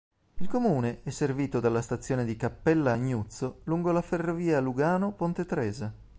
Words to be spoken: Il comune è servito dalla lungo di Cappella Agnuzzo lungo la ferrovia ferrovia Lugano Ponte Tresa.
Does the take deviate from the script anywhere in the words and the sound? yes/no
yes